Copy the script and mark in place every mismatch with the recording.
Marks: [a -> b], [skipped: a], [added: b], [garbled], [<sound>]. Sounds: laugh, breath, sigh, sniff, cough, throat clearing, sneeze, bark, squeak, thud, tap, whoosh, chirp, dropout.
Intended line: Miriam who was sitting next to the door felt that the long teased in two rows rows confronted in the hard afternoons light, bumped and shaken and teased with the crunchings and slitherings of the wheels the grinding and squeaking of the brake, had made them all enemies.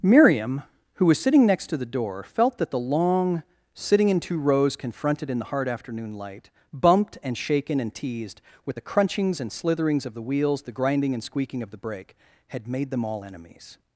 Miriam who was sitting next to the door felt that the long [teased -> sitting] in two rows [skipped: rows] confronted in the hard [afternoons -> afternoon] light, bumped and shaken and teased with the crunchings and slitherings of the wheels the grinding and squeaking of the brake, had made them all enemies.